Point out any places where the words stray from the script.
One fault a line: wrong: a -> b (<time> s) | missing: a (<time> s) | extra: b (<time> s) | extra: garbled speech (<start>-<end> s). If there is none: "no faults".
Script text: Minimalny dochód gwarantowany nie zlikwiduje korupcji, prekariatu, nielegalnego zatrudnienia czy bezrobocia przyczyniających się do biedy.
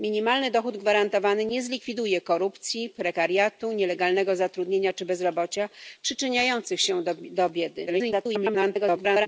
extra: garbled speech (7.9-9.3 s)